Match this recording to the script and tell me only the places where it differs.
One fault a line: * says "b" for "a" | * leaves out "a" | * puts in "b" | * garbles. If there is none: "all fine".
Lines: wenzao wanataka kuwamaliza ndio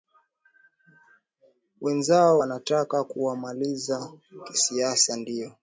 * puts in "kisiasa"